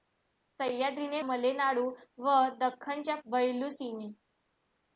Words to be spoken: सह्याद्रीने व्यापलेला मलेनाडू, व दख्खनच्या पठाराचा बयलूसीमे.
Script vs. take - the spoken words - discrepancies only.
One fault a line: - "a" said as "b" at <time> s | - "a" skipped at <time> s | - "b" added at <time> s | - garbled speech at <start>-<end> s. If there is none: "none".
- "व्यापलेला" skipped at 1.2 s
- "पठाराचा" skipped at 3.2 s